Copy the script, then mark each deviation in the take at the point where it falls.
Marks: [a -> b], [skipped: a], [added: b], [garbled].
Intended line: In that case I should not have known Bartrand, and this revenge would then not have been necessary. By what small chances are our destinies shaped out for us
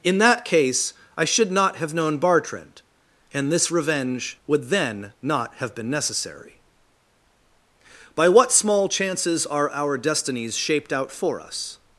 In that case I should not have known Bartrand, and this revenge would then not have been necessary. By what small chances are our destinies shaped out for us